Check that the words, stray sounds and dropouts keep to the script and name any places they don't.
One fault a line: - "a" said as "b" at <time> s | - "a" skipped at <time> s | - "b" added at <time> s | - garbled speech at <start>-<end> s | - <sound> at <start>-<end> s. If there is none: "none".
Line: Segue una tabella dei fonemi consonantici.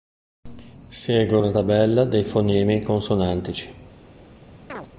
- chirp at 4.7-4.9 s